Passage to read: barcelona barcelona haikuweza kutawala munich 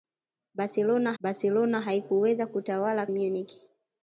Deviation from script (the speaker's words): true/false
false